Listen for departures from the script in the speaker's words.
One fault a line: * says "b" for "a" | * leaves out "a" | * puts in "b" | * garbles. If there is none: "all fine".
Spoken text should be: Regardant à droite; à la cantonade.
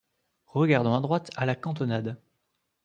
all fine